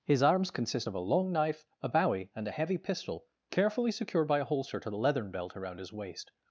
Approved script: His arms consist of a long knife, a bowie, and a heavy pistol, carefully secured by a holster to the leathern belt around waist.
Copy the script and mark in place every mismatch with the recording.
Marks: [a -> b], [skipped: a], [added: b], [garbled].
His arms consist of a long knife, a bowie, and a heavy pistol, carefully secured by a holster to the leathern belt around [added: his] waist.